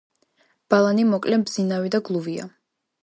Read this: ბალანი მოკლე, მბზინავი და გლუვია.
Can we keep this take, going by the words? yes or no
yes